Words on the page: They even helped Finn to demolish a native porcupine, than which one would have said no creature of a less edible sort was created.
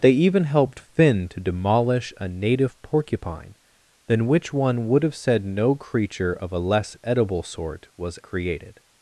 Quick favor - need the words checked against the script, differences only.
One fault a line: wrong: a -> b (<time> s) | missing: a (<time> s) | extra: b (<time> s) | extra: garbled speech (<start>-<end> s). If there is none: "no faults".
no faults